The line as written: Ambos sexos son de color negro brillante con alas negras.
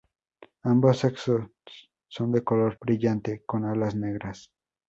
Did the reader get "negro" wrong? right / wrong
wrong